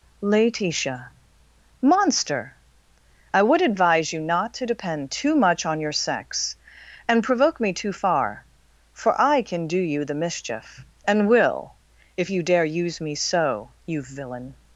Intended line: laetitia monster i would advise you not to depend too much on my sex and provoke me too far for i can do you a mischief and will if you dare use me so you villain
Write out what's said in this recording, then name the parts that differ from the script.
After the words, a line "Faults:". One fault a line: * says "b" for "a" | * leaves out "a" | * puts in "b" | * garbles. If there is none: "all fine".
laetitia monster i would advise you not to depend too much on your sex and provoke me too far for i can do you the mischief and will if you dare use me so you villain
Faults:
* says "your" for "my"
* says "the" for "a"